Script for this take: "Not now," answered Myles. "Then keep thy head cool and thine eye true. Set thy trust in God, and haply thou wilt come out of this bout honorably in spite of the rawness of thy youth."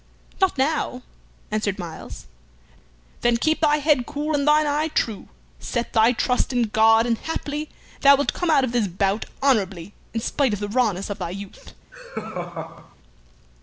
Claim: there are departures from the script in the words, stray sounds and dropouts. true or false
true